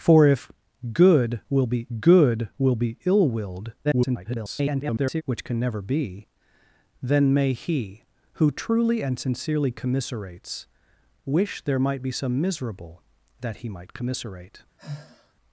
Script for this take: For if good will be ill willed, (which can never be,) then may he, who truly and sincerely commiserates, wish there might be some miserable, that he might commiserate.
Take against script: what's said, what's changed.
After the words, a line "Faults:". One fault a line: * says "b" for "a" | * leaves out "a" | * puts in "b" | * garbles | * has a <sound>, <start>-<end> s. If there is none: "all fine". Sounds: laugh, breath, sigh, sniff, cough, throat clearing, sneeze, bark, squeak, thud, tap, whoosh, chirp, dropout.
For if good will be good will be ill willed, [garbled] (which can never be,) then may he, who truly and sincerely commiserates, wish there might be some miserable, that he might commiserate.
Faults:
* puts in "good will be"
* garbles
* has a sigh, 14.8-15.3 s